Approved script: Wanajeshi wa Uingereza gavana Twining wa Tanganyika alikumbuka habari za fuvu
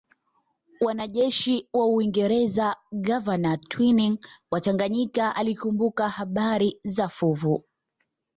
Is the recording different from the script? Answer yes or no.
no